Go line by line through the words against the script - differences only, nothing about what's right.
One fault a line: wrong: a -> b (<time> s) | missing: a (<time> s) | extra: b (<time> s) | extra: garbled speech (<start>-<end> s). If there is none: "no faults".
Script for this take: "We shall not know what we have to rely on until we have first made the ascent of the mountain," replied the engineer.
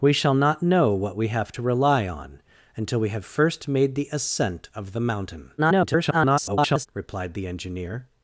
extra: garbled speech (5.6-6.9 s)